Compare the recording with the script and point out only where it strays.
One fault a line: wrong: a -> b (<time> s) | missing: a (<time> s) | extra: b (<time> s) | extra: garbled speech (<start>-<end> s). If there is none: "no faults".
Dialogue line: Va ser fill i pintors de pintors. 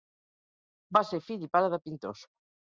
wrong: pintors -> pare (1.6 s)